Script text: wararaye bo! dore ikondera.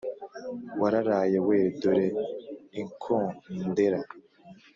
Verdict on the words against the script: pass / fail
fail